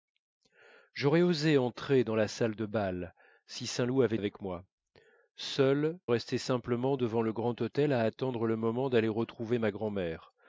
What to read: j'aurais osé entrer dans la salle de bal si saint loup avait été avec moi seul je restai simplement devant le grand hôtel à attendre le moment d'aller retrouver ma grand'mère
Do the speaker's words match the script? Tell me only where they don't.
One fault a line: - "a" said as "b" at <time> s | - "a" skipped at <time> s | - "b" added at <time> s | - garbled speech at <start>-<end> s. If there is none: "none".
- "été" skipped at 4.2 s
- "je" skipped at 6.0 s